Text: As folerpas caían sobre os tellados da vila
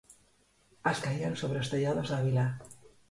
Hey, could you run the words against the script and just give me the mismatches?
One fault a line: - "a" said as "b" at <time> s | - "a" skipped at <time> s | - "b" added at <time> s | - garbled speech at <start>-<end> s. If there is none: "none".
- "folerpas" skipped at 1.0 s